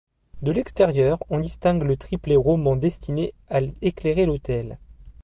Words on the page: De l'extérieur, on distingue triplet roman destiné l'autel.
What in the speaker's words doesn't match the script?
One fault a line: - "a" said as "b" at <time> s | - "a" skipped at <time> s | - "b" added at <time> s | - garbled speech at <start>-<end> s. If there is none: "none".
- "le" added at 1.8 s
- "à éclairer" added at 3.5 s